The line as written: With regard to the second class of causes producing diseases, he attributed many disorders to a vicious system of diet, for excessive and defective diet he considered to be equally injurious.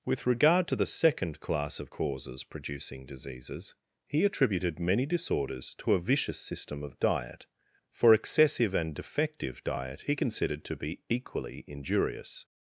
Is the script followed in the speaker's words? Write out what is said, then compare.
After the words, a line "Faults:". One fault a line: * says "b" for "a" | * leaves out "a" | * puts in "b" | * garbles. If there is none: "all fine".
With regard to the second class of causes producing diseases, he attributed many disorders to a vicious system of diet, for excessive and defective diet he considered to be equally injurious.
Faults:
all fine